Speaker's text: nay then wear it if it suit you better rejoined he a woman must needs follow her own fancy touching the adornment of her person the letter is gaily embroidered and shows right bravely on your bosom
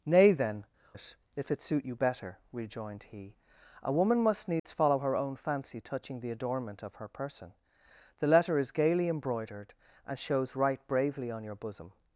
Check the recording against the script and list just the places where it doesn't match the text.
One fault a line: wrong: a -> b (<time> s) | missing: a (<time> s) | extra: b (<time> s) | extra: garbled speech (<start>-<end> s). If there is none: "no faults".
missing: wear (0.7 s)